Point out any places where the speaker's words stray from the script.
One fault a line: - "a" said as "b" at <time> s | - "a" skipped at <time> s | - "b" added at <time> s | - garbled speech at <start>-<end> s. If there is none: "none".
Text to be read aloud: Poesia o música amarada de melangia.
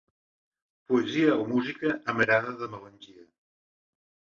none